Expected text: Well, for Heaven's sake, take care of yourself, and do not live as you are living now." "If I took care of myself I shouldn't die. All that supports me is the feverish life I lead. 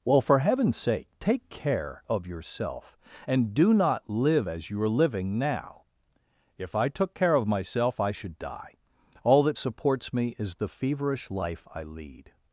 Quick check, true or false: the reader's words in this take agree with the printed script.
false